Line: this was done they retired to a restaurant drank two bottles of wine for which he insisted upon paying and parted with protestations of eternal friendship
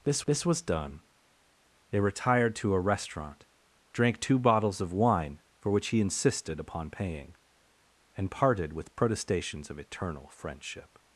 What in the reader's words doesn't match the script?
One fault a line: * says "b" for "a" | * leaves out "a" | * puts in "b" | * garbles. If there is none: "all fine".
* puts in "this"